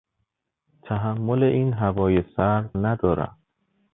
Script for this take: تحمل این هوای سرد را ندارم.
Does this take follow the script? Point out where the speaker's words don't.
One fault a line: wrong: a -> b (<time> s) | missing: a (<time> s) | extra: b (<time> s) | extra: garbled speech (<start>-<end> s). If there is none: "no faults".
missing: را (2.7 s)